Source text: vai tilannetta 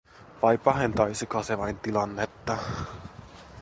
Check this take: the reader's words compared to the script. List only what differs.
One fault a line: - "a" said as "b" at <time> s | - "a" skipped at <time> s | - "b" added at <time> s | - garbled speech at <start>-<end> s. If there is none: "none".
- "pahentaisiko se vain" added at 0.6 s